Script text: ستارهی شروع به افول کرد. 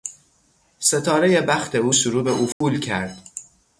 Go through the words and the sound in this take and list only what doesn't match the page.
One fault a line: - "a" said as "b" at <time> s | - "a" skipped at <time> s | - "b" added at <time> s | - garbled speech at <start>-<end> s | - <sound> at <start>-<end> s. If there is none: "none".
- "بخت او" added at 1.4 s
- dropout at 2.5-2.6 s